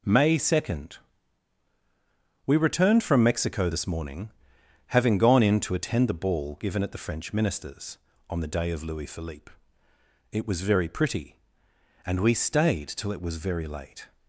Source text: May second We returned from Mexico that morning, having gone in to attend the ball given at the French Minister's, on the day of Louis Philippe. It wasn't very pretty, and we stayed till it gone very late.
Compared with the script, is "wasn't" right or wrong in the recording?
wrong